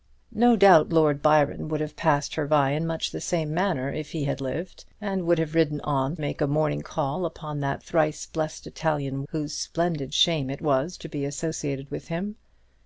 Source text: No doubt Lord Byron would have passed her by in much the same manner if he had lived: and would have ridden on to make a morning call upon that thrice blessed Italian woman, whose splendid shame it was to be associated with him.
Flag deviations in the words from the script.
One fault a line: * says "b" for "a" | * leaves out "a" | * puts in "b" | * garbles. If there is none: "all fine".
* leaves out "to"
* leaves out "woman"